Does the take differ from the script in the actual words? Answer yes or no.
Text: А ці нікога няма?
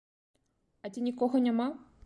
no